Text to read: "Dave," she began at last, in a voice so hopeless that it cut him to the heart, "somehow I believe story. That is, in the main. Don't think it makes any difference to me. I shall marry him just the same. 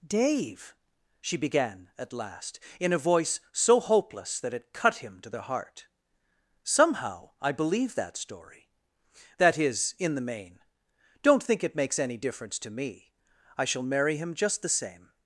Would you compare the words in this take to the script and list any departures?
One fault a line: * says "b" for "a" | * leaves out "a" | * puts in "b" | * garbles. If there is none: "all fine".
* puts in "that"